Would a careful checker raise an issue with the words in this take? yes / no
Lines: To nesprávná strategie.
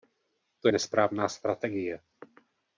no